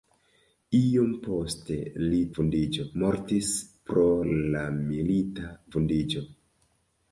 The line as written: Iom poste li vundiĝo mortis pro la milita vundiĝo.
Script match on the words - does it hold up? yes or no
yes